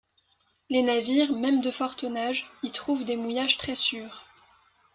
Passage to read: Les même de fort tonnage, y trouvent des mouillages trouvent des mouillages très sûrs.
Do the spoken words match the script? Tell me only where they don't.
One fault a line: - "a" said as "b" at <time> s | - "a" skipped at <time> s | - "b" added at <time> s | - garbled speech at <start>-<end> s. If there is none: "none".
- "navires" added at 0.8 s
- "trouvent des mouillages" skipped at 3.6 s